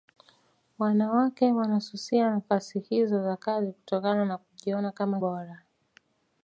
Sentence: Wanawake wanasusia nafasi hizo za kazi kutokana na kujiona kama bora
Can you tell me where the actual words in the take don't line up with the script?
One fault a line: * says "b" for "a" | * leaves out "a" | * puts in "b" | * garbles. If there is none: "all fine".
all fine